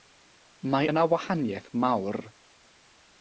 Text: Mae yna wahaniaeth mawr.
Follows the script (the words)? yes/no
yes